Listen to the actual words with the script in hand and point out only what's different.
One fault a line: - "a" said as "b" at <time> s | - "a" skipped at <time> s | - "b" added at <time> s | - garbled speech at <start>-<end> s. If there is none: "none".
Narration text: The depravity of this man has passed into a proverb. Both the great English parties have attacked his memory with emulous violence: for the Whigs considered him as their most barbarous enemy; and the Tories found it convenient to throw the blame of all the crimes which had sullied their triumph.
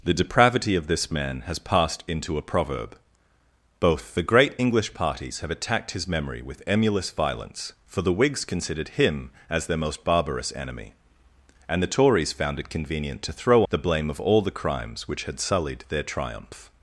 none